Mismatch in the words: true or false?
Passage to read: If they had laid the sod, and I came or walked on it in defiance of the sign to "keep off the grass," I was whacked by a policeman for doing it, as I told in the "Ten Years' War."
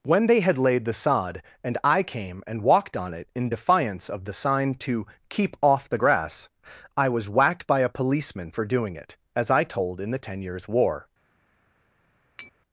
true